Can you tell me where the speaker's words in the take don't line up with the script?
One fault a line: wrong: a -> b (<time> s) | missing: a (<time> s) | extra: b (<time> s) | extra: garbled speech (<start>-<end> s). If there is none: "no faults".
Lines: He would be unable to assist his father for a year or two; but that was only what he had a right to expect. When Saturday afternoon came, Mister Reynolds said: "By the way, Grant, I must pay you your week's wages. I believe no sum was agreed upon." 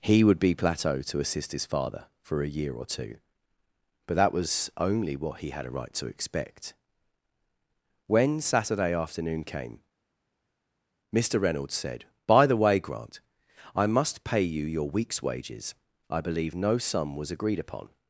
wrong: unable -> plateau (0.6 s)